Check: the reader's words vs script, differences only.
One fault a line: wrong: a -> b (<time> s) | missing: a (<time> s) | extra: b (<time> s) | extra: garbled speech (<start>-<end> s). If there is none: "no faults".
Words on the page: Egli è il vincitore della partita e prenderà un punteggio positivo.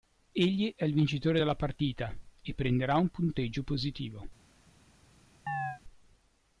no faults